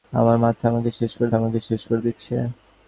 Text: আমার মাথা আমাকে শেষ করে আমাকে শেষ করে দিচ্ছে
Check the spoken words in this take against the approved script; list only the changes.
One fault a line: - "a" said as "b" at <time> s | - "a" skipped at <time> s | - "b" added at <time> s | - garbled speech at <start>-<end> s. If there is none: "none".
none